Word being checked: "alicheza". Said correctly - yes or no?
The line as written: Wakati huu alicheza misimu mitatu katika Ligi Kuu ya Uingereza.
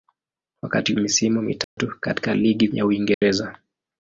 no